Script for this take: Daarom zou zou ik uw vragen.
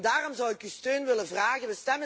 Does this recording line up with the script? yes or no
no